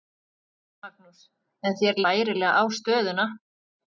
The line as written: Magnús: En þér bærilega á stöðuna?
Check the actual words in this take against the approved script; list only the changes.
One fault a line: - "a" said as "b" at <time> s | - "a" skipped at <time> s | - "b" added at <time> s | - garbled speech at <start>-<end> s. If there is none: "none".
none